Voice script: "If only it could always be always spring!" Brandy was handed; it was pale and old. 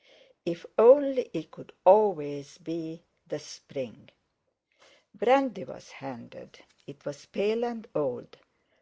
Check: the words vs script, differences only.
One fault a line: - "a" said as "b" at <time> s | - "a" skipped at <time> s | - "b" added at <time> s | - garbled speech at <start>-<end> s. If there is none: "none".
- "always" said as "the" at 3.3 s